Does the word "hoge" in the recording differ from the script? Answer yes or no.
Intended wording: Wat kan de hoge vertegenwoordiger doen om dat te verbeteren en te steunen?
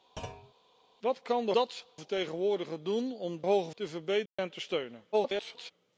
yes